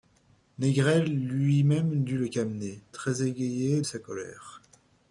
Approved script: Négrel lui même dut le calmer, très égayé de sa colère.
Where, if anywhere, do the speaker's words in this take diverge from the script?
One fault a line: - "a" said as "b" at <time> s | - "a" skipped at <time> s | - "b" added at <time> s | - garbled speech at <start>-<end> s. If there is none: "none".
- "de" skipped at 3.8 s